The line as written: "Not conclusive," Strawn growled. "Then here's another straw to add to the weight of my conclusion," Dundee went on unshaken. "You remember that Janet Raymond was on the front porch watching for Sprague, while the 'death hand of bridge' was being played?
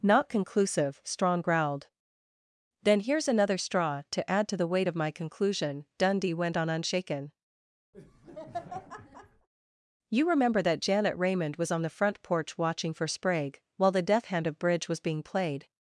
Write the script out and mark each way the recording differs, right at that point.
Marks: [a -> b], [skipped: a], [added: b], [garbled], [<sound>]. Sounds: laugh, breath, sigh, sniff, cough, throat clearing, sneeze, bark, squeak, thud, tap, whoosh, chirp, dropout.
"Not conclusive," Strawn growled. "Then here's another straw to add to the weight of my conclusion," Dundee went on unshaken. [laugh] "You remember that Janet Raymond was on the front porch watching for Sprague, while the 'death hand of bridge' was being played?